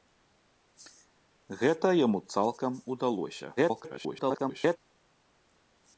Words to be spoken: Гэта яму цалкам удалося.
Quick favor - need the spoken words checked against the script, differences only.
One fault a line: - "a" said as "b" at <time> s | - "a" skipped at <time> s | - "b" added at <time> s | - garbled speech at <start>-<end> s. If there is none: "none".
- garbled speech at 3.6-4.8 s